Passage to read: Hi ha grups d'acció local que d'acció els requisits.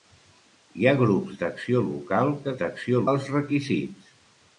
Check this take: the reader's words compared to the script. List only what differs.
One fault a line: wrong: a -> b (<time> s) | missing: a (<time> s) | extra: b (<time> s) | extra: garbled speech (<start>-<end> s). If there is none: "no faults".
no faults